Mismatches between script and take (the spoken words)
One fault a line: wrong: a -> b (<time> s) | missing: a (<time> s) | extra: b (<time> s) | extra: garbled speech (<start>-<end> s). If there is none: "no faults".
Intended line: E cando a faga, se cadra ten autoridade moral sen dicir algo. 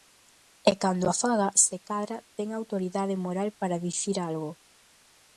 wrong: sen -> para (3.6 s)